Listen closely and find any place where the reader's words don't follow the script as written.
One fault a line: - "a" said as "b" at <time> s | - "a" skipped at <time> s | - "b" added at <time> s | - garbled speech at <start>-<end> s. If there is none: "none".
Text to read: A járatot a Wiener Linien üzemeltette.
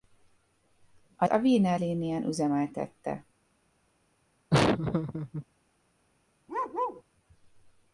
- "járatot" skipped at 1.2 s